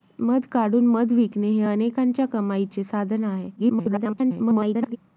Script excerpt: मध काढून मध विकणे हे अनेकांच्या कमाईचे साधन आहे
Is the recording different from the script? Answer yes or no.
yes